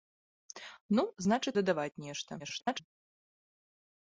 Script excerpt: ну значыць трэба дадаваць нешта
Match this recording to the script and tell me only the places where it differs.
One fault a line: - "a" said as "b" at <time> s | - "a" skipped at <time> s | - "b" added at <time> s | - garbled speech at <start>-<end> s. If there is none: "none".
- "трэба" skipped at 1.5 s
- garbled speech at 2.4-2.8 s